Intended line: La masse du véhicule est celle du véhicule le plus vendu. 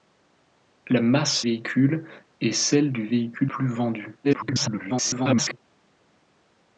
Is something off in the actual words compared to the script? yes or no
yes